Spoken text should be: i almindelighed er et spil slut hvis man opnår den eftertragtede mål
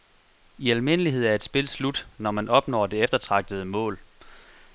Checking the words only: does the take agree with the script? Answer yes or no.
no